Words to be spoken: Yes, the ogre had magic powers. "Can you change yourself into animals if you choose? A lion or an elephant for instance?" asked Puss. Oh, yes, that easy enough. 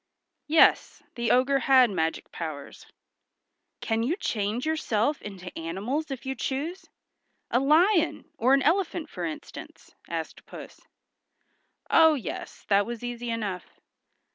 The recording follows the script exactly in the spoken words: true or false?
false